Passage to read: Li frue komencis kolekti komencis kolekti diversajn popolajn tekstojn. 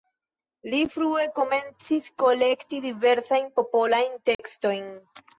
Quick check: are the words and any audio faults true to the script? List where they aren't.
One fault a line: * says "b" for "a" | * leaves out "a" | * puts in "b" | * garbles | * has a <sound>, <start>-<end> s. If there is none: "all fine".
* leaves out "komencis kolekti"
* has a dropout, 4.3-4.4 s